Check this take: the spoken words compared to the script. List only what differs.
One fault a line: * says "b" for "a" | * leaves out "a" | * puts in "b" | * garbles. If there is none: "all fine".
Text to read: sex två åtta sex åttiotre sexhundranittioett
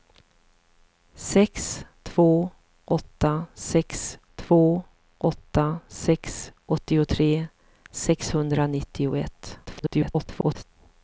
* puts in "två åtta sex"
* garbles